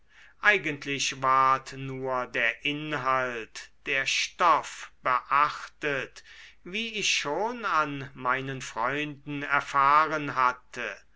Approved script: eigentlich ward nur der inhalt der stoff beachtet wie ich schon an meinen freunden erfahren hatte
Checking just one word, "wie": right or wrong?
right